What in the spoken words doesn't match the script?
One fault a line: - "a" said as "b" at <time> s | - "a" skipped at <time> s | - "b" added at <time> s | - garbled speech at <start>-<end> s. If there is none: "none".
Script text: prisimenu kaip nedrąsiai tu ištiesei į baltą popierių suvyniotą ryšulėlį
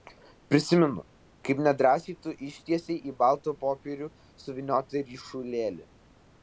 none